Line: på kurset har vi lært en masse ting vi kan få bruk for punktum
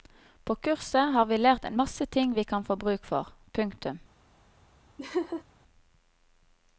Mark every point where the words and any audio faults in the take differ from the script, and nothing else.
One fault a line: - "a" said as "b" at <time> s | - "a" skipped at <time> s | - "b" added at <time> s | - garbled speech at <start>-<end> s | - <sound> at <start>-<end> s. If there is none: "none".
- laugh at 5.0-5.4 s